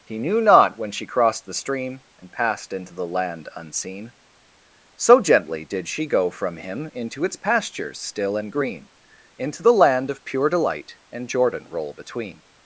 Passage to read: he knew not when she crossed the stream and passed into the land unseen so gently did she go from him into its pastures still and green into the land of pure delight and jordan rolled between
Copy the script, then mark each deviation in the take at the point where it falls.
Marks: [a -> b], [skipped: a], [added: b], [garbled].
he knew not when she crossed the stream and passed into the land unseen so gently did she go from him into its pastures still and green into the land of pure delight and jordan [rolled -> roll] between